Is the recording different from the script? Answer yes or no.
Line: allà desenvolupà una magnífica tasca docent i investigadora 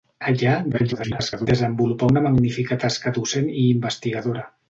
yes